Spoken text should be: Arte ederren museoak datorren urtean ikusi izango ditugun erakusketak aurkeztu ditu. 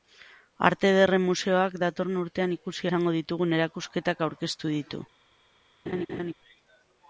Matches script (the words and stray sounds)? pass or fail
fail